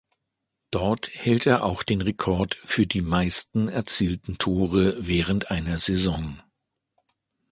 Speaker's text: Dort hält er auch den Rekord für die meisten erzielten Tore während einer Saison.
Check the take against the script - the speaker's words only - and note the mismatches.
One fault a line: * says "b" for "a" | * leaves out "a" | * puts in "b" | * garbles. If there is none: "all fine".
all fine